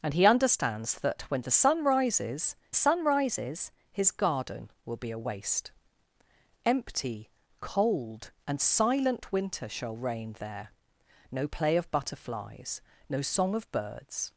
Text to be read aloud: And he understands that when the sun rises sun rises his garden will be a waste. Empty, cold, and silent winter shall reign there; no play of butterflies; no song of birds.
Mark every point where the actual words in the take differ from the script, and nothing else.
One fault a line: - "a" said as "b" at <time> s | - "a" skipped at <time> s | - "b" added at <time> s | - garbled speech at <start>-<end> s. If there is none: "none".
none